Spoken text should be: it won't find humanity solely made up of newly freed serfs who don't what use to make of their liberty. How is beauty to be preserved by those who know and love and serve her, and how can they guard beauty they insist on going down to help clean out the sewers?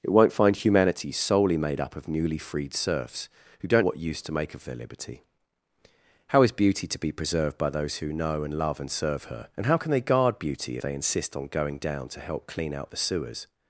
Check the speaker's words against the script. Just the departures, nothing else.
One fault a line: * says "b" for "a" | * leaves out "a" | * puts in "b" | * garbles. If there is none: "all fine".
all fine